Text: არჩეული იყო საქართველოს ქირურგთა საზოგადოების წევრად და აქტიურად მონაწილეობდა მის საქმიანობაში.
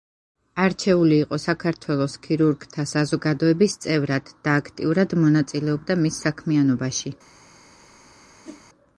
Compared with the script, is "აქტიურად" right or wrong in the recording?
right